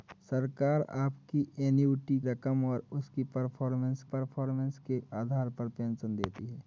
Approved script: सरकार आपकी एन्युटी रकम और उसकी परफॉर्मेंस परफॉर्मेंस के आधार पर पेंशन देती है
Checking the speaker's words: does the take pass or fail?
pass